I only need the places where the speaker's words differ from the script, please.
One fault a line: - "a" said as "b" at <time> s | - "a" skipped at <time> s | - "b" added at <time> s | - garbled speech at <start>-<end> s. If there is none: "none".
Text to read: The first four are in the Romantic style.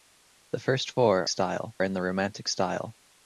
- "are" said as "style" at 1.3 s